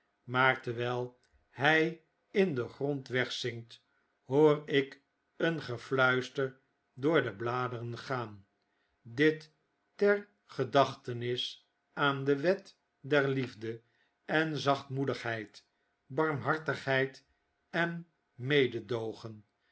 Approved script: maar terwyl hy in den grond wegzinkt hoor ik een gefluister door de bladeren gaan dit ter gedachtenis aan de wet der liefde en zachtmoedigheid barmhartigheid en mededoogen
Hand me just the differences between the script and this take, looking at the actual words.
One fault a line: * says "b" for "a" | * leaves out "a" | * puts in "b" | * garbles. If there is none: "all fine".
all fine